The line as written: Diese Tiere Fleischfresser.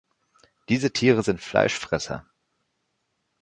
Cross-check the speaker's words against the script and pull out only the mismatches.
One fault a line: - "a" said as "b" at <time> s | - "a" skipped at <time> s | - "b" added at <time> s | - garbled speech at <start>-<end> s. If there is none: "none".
- "sind" added at 1.2 s